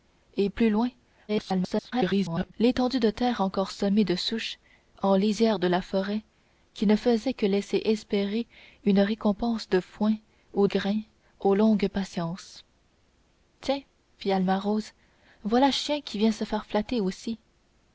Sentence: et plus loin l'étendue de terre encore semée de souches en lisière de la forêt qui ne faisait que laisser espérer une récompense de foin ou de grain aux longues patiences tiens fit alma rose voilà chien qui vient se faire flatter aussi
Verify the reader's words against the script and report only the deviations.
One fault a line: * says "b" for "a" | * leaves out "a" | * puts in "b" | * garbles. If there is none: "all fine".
* garbles
* leaves out "de"